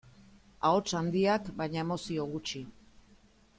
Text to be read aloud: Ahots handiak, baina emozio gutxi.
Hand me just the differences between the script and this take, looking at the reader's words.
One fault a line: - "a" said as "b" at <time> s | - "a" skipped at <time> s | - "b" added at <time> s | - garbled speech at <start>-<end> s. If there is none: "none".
none